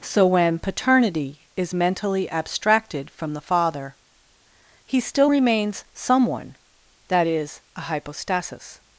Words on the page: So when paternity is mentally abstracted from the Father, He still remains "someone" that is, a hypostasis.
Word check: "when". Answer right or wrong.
right